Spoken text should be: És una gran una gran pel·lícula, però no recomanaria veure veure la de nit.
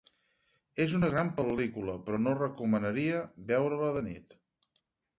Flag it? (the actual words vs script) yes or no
yes